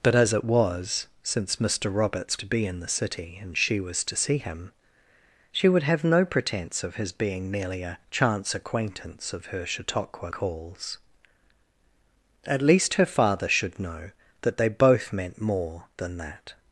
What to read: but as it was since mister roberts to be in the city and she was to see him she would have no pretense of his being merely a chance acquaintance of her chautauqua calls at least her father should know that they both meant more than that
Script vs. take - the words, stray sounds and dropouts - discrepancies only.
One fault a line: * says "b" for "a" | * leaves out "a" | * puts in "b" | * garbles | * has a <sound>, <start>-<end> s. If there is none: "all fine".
all fine